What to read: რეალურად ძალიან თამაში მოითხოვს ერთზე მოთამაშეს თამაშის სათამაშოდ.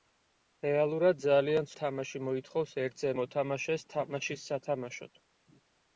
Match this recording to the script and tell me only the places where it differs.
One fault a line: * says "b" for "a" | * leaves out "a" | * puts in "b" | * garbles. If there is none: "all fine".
all fine